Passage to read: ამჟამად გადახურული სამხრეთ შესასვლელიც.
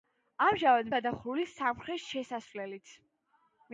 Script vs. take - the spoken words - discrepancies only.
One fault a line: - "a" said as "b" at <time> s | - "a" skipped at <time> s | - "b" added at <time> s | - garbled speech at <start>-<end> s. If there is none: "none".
none